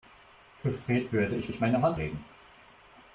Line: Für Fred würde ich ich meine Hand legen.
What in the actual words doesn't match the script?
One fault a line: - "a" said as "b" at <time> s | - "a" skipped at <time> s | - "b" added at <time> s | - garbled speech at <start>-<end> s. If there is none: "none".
none